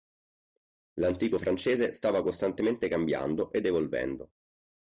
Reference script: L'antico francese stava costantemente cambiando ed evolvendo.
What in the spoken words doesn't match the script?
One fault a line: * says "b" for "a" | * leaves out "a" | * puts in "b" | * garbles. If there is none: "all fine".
all fine